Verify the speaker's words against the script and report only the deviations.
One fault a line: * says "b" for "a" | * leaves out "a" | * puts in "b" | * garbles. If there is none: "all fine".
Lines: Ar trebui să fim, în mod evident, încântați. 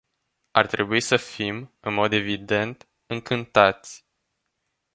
all fine